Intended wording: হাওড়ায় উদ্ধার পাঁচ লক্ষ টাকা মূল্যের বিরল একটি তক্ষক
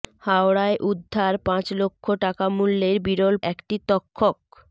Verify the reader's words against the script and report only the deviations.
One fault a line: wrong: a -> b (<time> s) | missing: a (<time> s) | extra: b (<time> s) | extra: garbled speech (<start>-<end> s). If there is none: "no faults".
no faults